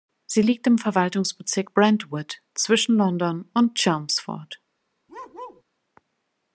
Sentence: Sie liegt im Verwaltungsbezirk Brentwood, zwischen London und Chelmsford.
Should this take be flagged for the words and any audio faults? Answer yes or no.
yes